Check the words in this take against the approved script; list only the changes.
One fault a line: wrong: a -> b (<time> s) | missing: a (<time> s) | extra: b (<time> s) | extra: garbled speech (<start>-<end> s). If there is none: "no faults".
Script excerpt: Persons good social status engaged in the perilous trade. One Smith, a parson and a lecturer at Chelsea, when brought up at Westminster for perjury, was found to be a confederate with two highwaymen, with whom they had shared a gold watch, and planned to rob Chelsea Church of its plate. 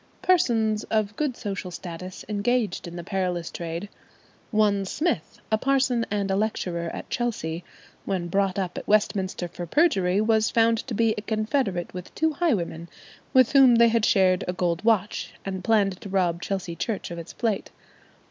extra: of (0.8 s)